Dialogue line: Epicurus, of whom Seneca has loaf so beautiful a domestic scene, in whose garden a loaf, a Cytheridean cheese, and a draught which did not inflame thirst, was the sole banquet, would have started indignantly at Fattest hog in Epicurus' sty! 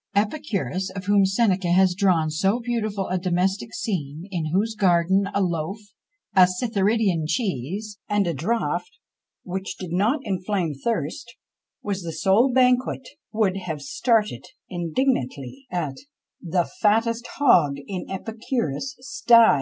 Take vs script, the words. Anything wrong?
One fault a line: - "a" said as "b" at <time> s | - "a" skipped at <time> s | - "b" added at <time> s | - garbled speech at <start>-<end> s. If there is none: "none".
- "loaf" said as "drawn" at 1.9 s
- "The" added at 16.4 s